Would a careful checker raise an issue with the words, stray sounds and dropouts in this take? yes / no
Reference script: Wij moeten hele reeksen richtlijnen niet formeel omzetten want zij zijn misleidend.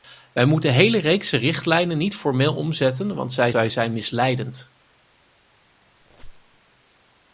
yes